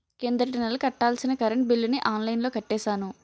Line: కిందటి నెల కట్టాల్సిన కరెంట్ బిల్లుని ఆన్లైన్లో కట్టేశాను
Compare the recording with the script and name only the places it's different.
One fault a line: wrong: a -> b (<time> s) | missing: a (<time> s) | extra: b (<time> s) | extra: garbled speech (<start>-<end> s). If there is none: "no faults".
no faults